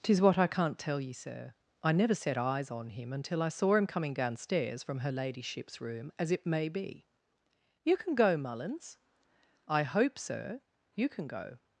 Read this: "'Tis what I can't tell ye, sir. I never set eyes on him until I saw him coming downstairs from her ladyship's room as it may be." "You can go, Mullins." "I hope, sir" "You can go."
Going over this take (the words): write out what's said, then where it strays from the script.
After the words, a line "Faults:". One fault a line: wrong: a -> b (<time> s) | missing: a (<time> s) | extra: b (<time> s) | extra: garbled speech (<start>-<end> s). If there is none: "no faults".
"'Tis what I can't tell ye, sir. I never set eyes on him until I saw him coming downstairs from her ladyship's room as it may be." "You can go, Mullins." "I hope, sir" "You can go."
Faults:
no faults